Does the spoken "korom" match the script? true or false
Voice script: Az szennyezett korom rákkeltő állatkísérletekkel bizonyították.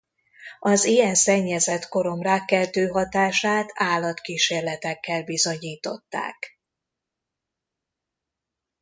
true